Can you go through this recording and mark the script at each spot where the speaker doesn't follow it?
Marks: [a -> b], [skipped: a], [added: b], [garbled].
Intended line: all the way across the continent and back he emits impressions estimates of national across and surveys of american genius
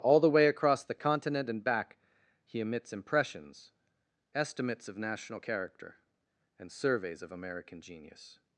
all the way across the continent and back he emits impressions estimates of national [across -> character] and surveys of american genius